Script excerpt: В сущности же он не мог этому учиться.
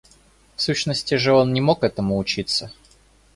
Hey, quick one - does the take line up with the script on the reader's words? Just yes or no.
yes